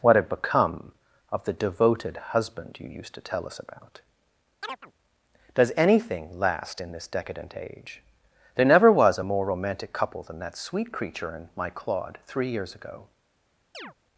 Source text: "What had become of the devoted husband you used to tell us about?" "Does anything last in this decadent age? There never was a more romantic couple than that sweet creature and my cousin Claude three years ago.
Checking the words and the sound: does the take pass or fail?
fail